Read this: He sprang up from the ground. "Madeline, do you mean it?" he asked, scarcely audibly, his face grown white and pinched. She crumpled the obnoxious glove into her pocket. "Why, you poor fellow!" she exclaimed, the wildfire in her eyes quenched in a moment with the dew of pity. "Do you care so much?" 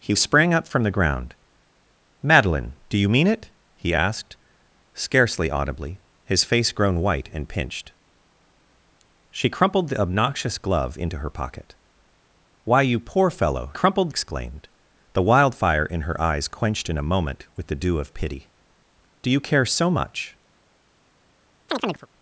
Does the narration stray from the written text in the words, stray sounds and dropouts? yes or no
yes